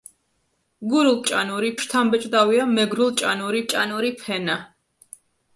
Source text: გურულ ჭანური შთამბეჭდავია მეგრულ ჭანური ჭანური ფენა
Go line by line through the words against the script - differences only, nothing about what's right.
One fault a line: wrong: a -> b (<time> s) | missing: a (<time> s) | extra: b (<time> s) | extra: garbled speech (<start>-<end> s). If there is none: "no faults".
no faults